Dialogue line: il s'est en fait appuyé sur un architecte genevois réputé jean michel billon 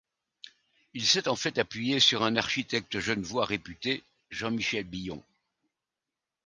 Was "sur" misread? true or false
false